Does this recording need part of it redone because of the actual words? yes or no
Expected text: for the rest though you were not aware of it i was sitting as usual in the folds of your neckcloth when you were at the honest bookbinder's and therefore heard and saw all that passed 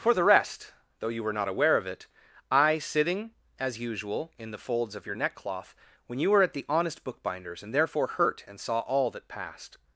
yes